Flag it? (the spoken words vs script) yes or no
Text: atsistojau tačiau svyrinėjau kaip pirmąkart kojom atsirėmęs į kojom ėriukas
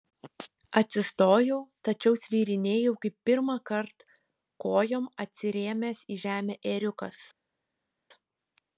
yes